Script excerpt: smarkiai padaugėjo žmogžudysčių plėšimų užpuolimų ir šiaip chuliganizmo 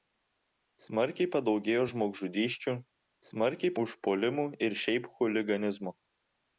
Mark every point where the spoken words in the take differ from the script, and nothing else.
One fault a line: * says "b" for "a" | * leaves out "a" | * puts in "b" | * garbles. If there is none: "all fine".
* says "smarkiai" for "plėšimų"